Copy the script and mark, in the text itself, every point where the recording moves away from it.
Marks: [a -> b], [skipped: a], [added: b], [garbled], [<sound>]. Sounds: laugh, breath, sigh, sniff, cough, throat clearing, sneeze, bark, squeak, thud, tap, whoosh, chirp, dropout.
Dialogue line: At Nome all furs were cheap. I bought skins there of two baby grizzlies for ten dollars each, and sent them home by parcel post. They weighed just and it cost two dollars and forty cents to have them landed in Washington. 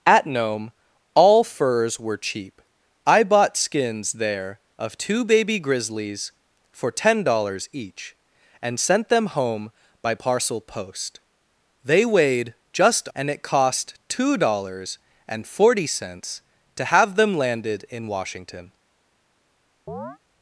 At Nome all furs were cheap. I bought skins there of two baby grizzlies for ten dollars each, and sent them home by parcel post. They weighed just and it cost two dollars and forty cents to have them landed in Washington. [chirp]